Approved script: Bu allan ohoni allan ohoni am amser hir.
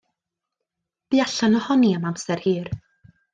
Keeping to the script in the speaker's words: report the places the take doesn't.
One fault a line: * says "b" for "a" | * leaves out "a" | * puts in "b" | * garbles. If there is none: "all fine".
* leaves out "allan ohoni"